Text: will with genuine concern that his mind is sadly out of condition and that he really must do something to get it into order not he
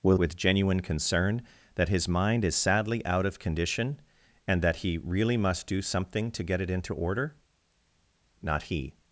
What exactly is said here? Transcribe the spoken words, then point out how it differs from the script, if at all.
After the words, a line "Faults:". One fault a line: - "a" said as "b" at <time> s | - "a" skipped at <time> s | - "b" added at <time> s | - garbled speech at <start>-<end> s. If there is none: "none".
will with genuine concern that his mind is sadly out of condition and that he really must do something to get it into order not he
Faults:
none